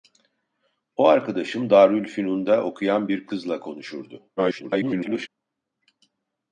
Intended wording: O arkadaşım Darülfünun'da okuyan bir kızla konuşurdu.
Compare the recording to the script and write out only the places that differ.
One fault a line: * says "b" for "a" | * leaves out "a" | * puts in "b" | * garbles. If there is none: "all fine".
* garbles